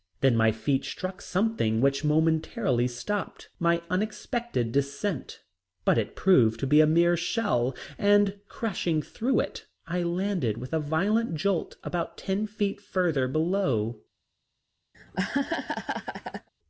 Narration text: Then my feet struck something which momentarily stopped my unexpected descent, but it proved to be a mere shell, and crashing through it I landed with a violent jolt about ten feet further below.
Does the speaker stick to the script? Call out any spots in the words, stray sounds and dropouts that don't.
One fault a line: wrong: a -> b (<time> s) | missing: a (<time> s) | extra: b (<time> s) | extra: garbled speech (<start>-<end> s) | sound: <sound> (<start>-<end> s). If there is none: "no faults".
sound: laugh (14.9-16.5 s)